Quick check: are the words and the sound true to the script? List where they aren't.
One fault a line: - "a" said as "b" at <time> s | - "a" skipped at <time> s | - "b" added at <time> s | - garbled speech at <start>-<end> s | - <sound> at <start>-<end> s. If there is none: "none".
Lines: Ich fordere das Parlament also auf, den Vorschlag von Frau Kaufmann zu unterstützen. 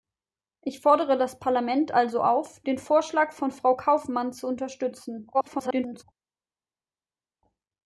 - garbled speech at 5.3-6.0 s